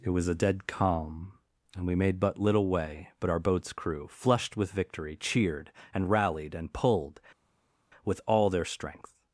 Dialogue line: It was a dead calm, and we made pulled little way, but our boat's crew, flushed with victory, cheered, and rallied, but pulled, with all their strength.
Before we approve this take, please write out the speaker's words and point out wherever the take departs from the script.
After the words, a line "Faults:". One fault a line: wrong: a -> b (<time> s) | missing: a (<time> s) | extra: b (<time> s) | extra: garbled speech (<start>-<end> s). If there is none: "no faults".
It was a dead calm, and we made but little way, but our boat's crew, flushed with victory, cheered, and rallied, and pulled, with all their strength.
Faults:
wrong: pulled -> but (2.2 s)
wrong: but -> and (6.5 s)